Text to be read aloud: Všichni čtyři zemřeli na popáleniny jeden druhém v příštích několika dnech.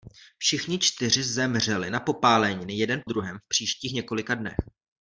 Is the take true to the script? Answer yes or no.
yes